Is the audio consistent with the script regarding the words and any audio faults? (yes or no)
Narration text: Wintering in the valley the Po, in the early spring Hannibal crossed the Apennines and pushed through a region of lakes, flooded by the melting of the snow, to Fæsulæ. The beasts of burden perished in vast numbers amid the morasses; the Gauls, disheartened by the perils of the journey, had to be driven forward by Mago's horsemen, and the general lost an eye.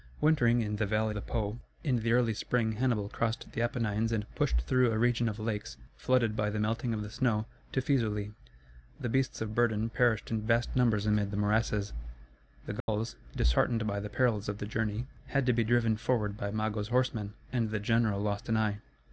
no